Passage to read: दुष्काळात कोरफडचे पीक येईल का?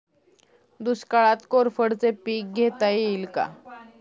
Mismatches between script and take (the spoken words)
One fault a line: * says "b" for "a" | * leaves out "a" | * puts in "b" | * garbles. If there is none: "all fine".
* puts in "घेता"